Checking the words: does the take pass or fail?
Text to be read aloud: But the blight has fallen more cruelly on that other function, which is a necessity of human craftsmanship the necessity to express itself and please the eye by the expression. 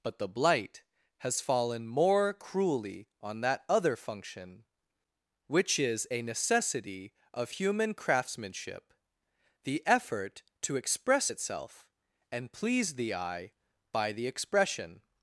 fail